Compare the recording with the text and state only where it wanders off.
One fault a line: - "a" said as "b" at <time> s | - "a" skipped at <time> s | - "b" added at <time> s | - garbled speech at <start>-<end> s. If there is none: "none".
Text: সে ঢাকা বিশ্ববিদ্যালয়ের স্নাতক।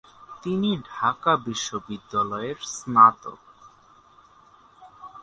- "সে" said as "তিনি" at 0.4 s